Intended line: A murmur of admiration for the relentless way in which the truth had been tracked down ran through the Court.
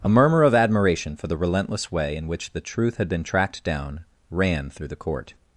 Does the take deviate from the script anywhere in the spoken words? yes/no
no